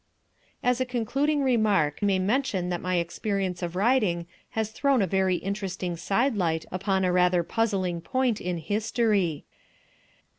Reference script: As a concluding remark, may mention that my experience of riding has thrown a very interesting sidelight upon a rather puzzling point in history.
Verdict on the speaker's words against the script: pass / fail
pass